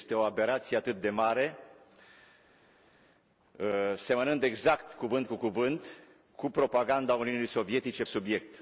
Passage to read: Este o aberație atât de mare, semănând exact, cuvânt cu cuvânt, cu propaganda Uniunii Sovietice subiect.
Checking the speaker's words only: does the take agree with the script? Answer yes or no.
yes